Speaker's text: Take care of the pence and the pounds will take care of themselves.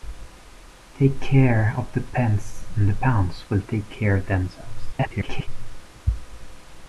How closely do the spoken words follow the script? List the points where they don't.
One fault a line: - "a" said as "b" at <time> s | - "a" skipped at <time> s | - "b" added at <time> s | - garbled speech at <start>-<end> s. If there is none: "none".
- garbled speech at 4.9-5.5 s